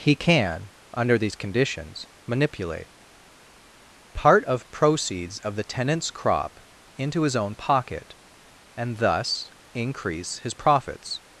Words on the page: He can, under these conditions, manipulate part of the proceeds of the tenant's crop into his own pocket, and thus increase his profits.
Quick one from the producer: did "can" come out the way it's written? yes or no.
yes